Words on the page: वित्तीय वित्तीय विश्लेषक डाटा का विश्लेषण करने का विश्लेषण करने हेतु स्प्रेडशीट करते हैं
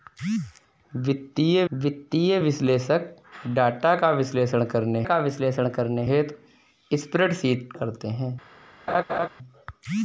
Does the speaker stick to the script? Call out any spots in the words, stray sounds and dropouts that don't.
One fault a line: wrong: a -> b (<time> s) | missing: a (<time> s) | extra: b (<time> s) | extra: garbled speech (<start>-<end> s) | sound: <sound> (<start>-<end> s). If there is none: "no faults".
sound: laugh (8.9-9.3 s)